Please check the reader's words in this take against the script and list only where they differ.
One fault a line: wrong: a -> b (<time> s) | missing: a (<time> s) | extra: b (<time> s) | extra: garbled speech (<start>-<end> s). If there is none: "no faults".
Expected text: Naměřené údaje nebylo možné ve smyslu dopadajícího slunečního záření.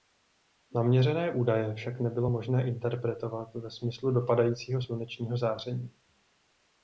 extra: však (1.7 s)
extra: interpretovat (2.7 s)